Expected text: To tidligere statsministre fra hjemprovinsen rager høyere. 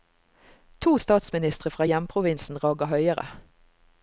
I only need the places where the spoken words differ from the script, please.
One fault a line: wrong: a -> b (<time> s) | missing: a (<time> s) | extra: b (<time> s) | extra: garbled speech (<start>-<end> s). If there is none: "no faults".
missing: tidligere (1.0 s)